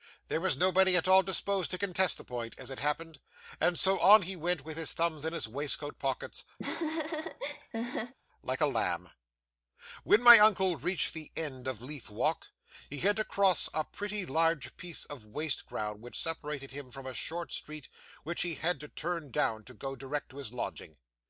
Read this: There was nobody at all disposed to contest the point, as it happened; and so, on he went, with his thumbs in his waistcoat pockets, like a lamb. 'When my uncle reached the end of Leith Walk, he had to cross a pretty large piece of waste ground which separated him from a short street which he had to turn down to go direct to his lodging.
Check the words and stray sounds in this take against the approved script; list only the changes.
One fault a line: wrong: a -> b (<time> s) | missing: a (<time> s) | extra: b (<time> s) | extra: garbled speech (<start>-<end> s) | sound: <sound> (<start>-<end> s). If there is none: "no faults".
sound: laugh (6.6-8.1 s)